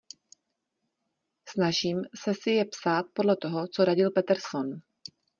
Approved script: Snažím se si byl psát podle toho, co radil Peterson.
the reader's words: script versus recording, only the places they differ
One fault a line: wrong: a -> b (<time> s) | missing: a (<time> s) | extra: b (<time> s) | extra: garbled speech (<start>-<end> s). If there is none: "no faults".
wrong: byl -> je (2.5 s)